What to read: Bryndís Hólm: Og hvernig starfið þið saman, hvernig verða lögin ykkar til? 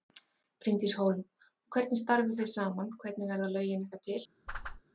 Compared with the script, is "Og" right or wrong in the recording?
right